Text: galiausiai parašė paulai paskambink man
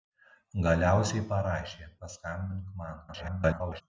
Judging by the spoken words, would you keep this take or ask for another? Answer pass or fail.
fail